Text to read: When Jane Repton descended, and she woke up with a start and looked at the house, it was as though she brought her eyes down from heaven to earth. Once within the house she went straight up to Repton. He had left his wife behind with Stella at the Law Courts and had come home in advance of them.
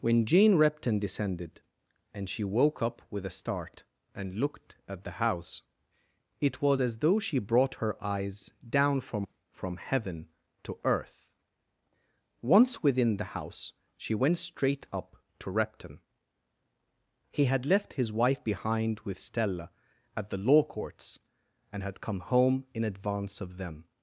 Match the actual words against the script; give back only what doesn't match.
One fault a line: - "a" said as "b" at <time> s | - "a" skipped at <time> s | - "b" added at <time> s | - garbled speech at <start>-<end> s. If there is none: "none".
- "from" added at 9.5 s